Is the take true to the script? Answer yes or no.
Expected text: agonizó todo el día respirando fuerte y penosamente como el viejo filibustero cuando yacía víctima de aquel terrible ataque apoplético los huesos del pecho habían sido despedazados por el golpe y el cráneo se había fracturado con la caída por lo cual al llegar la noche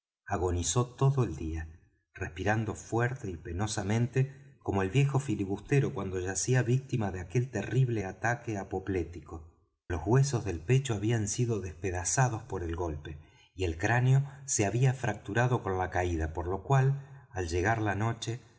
yes